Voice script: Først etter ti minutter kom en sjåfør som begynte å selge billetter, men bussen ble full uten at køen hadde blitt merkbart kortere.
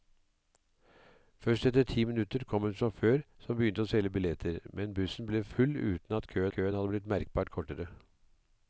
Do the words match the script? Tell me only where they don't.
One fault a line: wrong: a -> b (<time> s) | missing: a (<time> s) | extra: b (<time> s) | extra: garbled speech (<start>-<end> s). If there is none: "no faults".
extra: køen (6.5 s)